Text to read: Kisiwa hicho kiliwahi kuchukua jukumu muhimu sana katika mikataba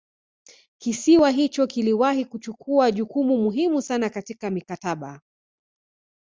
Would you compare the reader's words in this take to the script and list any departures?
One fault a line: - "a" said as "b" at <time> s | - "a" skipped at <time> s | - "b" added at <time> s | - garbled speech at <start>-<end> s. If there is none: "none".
none